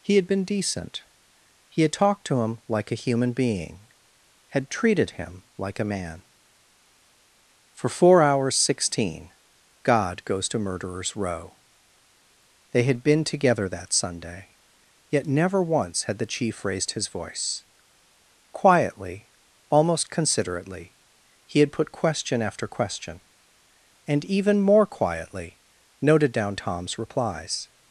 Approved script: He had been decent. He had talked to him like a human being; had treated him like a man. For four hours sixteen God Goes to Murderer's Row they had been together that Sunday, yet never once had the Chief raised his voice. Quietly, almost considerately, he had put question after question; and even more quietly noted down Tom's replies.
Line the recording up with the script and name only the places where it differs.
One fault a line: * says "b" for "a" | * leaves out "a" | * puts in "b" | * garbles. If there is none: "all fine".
all fine